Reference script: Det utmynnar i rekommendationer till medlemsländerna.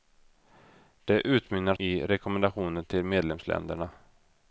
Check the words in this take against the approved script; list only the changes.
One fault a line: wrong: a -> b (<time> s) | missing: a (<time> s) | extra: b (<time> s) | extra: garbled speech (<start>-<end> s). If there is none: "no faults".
no faults